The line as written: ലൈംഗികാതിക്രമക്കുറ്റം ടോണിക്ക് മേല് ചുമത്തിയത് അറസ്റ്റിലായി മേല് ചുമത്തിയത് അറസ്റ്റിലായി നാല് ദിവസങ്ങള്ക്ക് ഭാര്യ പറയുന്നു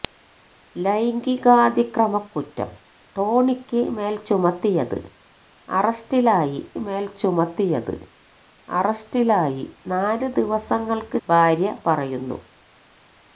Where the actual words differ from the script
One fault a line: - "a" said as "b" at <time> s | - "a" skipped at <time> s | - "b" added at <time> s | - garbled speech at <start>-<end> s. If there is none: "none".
none